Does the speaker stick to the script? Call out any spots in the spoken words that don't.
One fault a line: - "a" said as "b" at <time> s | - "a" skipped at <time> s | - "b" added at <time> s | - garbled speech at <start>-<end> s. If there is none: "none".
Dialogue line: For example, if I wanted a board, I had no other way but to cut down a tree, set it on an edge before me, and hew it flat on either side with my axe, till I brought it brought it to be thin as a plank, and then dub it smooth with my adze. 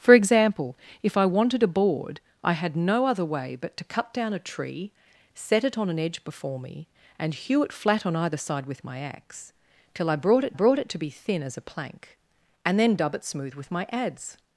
none